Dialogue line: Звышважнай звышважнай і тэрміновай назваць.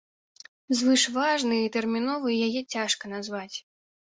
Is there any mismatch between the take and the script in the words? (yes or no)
yes